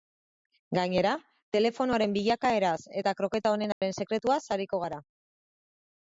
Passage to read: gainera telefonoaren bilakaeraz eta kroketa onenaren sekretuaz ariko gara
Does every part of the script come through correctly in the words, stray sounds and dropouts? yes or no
no